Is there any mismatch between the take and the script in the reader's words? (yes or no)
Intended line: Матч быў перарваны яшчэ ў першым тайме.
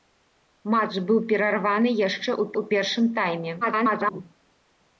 yes